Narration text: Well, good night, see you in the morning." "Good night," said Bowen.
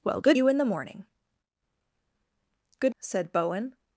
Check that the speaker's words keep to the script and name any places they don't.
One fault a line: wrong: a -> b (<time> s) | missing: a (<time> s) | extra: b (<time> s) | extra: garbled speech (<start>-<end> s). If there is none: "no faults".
missing: night see (0.4 s)
missing: night (2.9 s)